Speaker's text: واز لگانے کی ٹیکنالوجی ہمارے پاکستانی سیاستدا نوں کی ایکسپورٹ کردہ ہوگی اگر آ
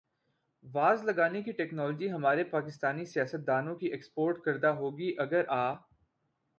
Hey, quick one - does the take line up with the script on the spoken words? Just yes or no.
yes